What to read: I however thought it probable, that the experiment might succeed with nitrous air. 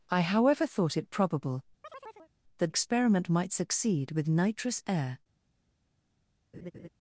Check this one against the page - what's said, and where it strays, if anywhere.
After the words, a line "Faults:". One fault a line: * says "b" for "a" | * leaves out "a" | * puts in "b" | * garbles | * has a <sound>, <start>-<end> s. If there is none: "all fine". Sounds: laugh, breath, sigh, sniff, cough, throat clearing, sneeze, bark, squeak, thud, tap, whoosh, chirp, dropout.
I however thought it probable, that experiment might succeed with nitrous air.
Faults:
* has a chirp, 1.8-2.3 s
* leaves out "the"
* has a laugh, 6.5-6.9 s